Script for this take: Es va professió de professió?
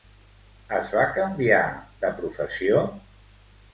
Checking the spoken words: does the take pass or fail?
fail